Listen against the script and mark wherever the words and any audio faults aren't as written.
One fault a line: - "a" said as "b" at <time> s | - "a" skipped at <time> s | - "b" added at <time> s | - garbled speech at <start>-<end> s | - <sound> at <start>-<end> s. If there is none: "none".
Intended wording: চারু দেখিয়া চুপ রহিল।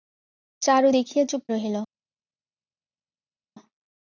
none